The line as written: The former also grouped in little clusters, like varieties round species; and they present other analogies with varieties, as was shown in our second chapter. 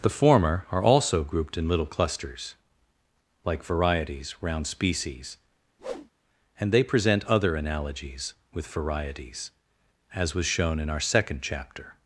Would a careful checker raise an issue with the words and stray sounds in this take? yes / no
yes